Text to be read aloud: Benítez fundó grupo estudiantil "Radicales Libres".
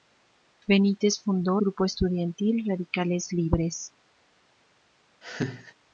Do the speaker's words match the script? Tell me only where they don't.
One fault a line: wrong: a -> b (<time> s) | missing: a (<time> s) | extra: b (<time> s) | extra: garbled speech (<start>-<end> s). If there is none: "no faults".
no faults